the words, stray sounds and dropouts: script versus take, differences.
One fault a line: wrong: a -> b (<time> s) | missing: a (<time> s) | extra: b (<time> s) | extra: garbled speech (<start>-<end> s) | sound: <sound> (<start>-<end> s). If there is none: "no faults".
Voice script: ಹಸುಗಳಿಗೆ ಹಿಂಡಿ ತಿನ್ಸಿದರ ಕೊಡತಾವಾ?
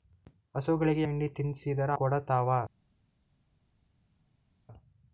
no faults